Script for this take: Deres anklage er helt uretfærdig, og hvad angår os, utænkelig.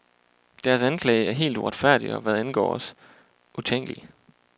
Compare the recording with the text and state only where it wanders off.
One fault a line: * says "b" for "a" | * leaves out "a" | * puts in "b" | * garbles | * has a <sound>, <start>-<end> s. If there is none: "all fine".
all fine